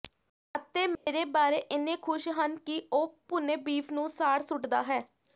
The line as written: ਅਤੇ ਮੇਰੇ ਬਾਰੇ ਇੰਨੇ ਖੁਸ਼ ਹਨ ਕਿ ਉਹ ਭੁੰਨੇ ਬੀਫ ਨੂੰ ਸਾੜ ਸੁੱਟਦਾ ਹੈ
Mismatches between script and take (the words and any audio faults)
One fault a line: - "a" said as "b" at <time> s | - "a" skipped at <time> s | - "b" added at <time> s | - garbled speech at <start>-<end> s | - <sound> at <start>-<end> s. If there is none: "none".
- dropout at 1.0-1.1 s